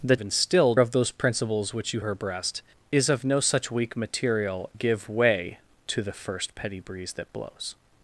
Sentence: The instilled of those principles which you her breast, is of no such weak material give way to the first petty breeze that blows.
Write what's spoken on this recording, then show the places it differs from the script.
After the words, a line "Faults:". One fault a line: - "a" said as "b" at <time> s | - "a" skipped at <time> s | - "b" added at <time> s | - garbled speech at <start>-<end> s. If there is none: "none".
The instilled of those principles which you her breast, is of no such weak material give way to the first petty breeze that blows.
Faults:
none